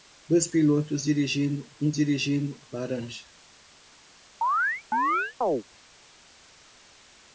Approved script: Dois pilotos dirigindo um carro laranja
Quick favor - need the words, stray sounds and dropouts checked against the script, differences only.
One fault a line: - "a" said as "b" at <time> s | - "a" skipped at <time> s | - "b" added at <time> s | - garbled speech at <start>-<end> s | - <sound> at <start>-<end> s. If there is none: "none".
- "carro" said as "dirigindo" at 1.9 s
- chirp at 4.4-5.6 s